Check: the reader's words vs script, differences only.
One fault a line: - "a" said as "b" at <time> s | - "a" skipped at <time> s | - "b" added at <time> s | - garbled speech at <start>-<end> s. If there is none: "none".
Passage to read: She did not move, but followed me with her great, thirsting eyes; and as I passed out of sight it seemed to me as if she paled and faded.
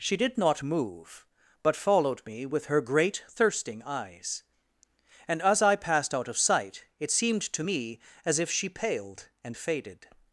none